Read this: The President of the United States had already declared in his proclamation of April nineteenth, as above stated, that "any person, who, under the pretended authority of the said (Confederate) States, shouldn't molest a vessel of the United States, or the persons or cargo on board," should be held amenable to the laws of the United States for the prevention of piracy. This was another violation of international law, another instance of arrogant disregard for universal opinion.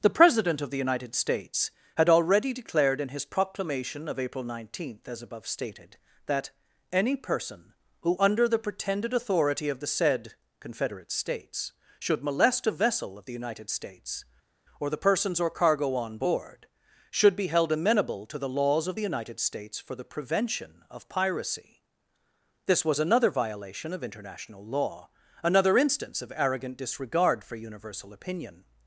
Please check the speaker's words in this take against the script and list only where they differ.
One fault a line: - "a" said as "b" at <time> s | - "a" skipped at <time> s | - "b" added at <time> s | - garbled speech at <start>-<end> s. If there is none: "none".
- "shouldn't" said as "should" at 12.0 s